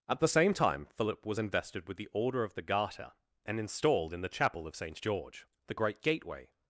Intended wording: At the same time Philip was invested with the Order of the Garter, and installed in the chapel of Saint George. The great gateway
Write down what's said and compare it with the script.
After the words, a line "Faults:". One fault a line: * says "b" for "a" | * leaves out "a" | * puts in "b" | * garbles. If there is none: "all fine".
At the same time Philip was invested with the Order of the Garter, and installed in the chapel of Saint George. The great gateway
Faults:
all fine